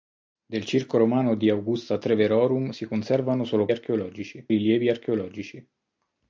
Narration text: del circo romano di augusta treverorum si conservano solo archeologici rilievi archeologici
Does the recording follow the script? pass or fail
pass